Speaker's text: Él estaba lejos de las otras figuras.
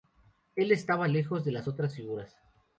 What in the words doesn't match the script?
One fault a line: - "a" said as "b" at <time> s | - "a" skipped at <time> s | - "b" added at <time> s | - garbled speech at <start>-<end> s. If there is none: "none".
none